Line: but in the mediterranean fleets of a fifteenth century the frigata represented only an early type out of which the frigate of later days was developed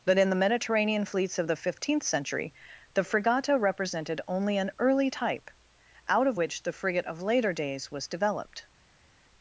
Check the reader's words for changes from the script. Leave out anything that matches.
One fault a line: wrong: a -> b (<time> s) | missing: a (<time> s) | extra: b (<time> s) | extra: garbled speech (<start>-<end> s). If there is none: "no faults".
wrong: a -> the (1.4 s)